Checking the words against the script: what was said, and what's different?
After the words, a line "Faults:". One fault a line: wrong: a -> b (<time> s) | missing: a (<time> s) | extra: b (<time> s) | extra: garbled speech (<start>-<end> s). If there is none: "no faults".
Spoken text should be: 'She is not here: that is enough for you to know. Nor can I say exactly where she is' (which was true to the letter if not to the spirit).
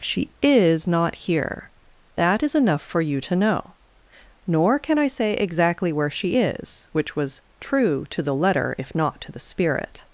'She is not here: that is enough for you to know. Nor can I say exactly where she is' (which was true to the letter if not to the spirit).
Faults:
no faults